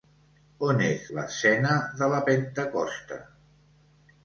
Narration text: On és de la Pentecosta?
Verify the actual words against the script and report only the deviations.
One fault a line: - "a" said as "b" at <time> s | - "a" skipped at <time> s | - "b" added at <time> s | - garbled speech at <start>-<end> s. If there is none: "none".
- "l'escena" added at 1.1 s